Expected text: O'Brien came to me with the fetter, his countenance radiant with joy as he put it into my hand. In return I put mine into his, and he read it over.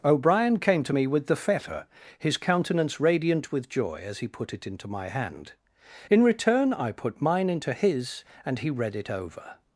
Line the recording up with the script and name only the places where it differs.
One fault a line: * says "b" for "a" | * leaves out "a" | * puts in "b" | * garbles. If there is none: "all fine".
all fine